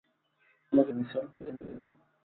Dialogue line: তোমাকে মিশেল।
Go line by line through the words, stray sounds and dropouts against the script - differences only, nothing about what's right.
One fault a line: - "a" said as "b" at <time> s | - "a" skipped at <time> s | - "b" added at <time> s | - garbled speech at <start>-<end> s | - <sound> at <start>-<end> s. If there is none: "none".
- laugh at 1.4-1.8 s